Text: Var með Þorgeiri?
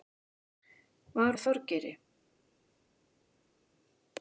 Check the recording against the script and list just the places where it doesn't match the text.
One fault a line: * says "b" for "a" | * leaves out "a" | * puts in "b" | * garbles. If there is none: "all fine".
all fine